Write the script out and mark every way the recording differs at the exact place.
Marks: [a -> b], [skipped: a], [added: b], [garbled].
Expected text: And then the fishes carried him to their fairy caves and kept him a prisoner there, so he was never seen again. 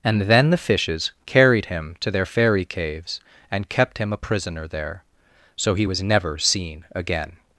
And then the fishes carried him to their fairy caves and kept him a prisoner there, so he was never seen again.